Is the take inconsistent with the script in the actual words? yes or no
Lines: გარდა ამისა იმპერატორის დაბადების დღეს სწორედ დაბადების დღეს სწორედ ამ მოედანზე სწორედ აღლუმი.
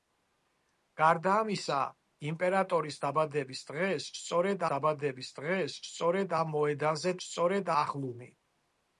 no